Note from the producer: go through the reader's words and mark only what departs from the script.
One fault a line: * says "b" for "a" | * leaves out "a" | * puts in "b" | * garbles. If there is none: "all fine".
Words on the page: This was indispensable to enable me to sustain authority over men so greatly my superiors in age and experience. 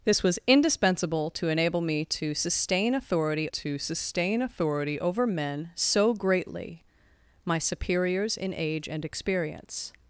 * puts in "to sustain authority"